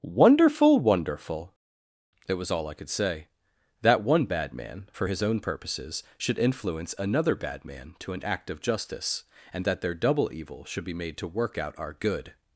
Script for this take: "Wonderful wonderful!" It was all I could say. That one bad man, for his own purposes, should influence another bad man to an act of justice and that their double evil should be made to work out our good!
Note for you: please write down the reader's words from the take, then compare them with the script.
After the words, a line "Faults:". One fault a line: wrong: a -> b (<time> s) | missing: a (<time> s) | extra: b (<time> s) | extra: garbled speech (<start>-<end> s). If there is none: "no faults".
"Wonderful wonderful!" It was all I could say. That one bad man, for his own purposes, should influence another bad man to an act of justice and that their double evil should be made to work out our good!
Faults:
no faults